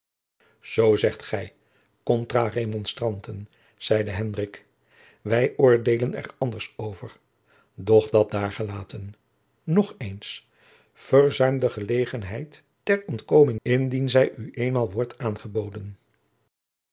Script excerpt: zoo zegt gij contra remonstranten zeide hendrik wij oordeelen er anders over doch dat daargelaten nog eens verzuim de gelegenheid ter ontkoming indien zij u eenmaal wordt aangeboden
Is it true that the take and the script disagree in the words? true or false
false